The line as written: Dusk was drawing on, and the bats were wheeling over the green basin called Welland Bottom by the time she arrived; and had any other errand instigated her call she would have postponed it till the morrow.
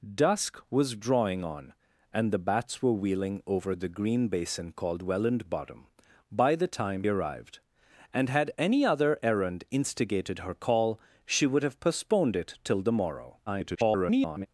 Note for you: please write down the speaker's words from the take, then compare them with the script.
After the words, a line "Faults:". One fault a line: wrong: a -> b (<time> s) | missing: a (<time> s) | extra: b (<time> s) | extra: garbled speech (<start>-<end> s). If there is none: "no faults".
Dusk was drawing on, and the bats were wheeling over the green basin called Welland Bottom by the time arrived; and had any other errand instigated her call she would have postponed it till the morrow. [garbled]
Faults:
missing: she (7.0 s)
extra: garbled speech (13.5-14.5 s)